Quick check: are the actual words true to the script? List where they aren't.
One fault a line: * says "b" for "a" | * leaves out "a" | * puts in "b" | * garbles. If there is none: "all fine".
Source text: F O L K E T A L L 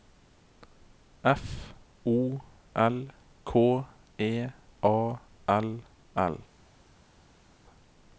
* leaves out "T"